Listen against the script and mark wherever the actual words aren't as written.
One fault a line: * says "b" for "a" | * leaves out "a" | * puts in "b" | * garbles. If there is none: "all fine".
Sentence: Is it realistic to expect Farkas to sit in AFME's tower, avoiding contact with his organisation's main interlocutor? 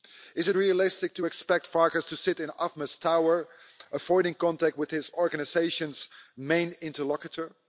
all fine